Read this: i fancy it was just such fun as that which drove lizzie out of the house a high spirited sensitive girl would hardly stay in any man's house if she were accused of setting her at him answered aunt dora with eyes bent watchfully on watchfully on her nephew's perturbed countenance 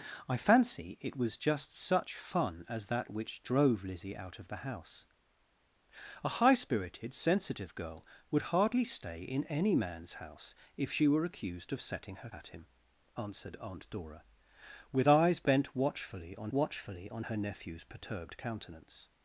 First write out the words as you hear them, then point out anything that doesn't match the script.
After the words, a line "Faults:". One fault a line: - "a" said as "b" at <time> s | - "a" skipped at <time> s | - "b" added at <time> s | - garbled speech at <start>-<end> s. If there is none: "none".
i fancy it was just such fun as that which drove lizzie out of the house a high spirited sensitive girl would hardly stay in any man's house if she were accused of setting her at him answered aunt dora with eyes bent watchfully on watchfully on her nephew's perturbed countenance
Faults:
none